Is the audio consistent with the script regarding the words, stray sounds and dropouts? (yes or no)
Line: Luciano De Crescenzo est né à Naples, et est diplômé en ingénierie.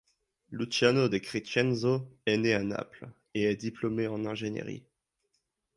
yes